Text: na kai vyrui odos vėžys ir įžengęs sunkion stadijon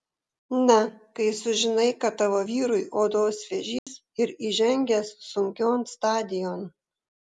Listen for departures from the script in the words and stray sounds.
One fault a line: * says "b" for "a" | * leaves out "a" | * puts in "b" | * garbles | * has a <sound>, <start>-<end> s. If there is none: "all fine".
* puts in "sužinai kad tavo"
* has a dropout, 3.8-3.9 s